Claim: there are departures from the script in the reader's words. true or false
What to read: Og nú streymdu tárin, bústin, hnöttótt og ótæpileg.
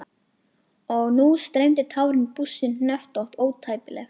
true